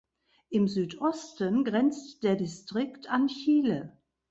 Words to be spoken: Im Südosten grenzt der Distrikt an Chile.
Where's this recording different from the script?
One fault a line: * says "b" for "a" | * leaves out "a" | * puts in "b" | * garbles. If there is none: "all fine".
all fine